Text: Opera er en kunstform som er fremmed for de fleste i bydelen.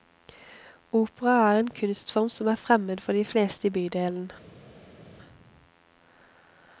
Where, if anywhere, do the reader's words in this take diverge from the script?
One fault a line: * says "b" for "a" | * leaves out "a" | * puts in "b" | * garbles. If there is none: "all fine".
all fine